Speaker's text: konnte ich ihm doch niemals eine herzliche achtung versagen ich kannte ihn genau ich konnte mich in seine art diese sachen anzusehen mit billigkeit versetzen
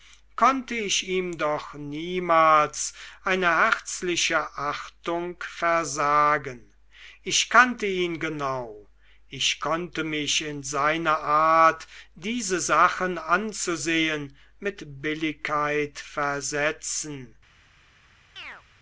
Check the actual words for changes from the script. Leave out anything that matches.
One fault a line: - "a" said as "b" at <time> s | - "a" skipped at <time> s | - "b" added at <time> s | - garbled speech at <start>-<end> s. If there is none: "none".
none